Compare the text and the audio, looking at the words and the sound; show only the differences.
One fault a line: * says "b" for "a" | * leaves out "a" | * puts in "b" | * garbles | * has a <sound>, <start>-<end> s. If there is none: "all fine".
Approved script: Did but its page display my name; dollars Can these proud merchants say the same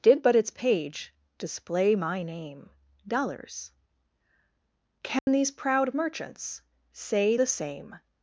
* has a dropout, 5.2-5.3 s